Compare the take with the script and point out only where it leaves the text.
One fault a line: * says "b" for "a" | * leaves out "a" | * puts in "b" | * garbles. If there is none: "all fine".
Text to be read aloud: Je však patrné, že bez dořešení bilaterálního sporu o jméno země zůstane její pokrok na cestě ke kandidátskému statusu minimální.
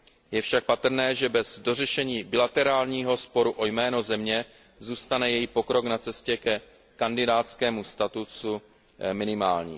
all fine